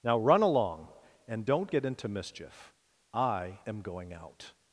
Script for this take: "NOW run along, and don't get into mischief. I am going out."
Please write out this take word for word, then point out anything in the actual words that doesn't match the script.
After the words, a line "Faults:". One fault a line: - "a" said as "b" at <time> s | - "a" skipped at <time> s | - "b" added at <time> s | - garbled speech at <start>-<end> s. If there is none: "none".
"NOW run along, and don't get into mischief. I am going out."
Faults:
none